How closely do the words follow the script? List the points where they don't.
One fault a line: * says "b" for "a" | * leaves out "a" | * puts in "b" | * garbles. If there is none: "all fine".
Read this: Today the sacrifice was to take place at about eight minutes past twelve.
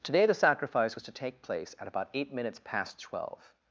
all fine